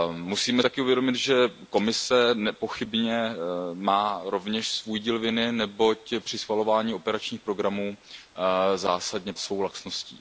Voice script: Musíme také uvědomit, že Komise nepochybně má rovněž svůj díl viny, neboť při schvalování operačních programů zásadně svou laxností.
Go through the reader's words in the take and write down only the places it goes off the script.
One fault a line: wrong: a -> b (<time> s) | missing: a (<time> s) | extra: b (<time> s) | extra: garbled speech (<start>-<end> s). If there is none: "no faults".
no faults